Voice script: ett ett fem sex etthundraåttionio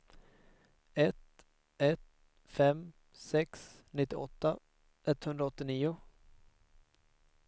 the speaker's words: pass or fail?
fail